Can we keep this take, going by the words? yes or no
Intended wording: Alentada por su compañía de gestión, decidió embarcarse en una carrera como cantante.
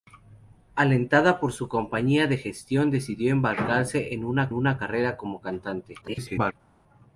no